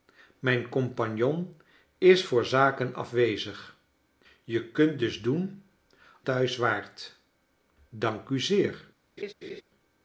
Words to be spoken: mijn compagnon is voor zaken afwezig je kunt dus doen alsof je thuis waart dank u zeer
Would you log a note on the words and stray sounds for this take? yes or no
yes